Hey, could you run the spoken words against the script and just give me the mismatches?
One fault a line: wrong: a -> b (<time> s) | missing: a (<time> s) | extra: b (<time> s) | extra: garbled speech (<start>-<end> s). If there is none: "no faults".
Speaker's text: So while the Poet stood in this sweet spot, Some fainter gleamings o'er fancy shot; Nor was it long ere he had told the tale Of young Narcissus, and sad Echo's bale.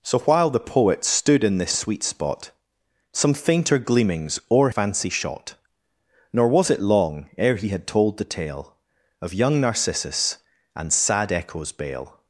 no faults